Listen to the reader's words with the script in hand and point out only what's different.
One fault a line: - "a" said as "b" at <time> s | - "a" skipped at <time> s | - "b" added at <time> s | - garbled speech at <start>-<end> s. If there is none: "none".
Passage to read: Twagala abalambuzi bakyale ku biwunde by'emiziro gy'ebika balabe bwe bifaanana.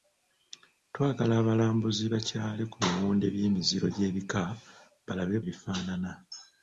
- "bwe" skipped at 5.4 s